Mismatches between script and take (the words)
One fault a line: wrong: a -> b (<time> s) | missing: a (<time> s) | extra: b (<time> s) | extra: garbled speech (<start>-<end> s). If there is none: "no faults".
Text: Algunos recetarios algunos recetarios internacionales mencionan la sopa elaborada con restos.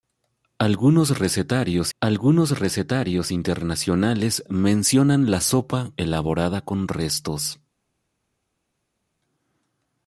no faults